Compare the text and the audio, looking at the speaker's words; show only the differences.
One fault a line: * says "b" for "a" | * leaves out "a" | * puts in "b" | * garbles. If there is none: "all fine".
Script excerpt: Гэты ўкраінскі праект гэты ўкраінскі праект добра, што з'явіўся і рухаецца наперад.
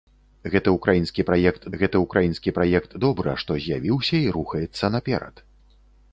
all fine